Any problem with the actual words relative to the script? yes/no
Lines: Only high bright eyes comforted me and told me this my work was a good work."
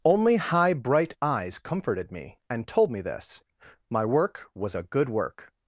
no